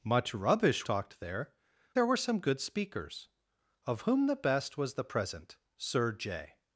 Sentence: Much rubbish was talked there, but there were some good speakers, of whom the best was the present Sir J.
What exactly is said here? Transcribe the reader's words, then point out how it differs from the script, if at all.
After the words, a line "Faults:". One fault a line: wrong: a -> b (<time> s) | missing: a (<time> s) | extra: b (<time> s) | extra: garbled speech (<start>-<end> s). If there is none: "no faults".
Much rubbish talked there, there were some good speakers, of whom the best was the present Sir J.
Faults:
missing: was (0.9 s)
missing: but (1.5 s)